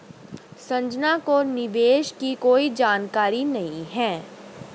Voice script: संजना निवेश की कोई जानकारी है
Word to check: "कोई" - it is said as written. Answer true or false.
true